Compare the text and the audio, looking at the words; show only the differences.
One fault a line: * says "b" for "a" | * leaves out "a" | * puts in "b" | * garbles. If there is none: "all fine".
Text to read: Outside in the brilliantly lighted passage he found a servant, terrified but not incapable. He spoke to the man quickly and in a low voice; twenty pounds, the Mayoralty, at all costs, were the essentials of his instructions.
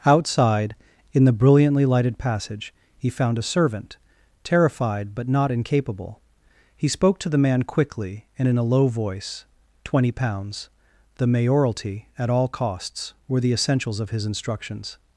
all fine